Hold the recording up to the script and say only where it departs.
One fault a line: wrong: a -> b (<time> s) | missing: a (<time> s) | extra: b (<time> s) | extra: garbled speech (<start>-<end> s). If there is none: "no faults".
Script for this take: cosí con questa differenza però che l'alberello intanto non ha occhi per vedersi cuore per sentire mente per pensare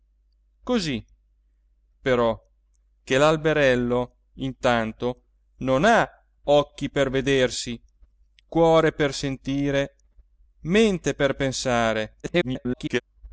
missing: con questa differenza (1.1 s)
extra: garbled speech (12.2-13.0 s)